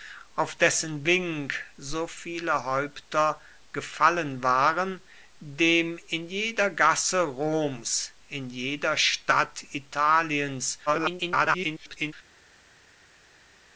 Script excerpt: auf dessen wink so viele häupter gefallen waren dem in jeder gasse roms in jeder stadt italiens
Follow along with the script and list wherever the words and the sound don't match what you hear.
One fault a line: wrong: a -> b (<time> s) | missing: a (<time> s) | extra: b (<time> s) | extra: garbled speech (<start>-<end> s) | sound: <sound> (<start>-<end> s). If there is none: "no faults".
extra: garbled speech (10.9-12.1 s)